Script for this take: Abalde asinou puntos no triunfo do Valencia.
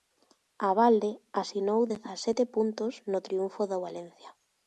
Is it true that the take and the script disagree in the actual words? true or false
true